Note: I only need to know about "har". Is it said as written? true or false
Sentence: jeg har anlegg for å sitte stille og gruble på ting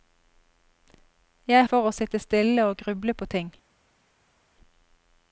false